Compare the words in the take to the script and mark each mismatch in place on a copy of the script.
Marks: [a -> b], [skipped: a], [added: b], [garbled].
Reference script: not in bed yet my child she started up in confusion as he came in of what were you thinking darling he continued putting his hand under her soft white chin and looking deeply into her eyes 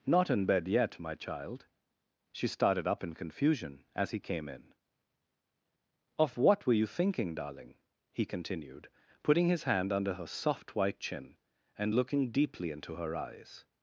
not in bed yet my child she started up in confusion as he came in of what were you thinking darling he continued putting his hand under her soft white chin and looking deeply into her eyes